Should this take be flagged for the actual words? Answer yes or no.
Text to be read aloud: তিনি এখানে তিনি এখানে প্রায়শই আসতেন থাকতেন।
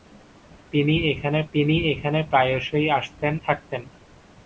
no